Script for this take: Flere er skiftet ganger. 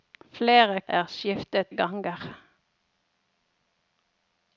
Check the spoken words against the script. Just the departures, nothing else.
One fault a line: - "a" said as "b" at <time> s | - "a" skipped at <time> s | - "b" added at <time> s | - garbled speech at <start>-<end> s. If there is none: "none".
none